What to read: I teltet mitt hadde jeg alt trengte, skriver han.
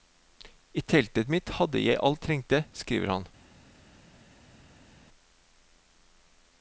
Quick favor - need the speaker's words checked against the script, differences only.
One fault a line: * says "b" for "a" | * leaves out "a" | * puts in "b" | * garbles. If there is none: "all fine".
all fine